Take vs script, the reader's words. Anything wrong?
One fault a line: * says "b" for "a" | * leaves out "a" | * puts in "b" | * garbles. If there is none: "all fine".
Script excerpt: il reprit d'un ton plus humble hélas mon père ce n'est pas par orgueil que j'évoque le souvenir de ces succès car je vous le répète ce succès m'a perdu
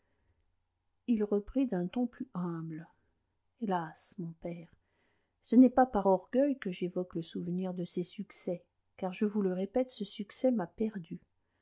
all fine